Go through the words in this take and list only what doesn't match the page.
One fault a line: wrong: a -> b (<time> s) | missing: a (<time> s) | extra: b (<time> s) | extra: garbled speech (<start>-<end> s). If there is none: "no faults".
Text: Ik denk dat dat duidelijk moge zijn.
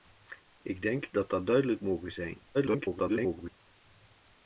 extra: garbled speech (2.5-3.6 s)